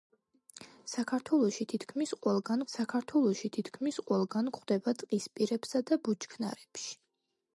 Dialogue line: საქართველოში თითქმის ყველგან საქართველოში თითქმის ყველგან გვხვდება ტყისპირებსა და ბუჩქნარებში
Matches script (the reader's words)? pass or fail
pass